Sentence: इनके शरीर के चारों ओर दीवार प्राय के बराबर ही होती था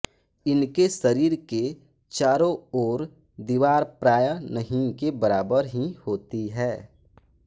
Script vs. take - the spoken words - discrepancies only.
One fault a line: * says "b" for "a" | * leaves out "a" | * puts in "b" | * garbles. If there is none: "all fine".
* puts in "नहीं"
* says "है" for "था"